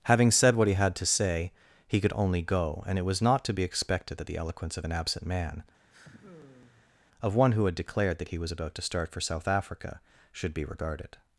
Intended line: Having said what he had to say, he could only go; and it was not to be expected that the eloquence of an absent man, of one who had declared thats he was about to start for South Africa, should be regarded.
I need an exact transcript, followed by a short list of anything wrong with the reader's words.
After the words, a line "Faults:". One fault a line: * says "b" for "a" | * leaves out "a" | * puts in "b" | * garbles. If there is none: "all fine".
Having said what he had to say, he could only go; and it was not to be expected that the eloquence of an absent man, of one who had declared that he was about to start for South Africa, should be regarded.
Faults:
* says "that" for "thats"